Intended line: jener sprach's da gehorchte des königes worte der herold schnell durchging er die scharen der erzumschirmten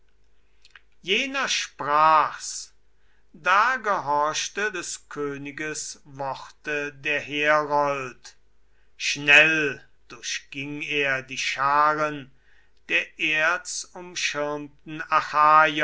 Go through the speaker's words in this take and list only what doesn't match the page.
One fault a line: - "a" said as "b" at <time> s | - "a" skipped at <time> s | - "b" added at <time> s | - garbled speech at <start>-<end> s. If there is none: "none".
none